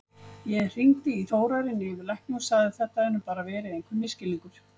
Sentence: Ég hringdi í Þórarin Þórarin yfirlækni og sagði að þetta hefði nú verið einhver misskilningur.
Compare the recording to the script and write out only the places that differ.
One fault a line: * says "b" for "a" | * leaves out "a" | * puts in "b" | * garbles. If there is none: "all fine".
* leaves out "Þórarin"
* puts in "bara"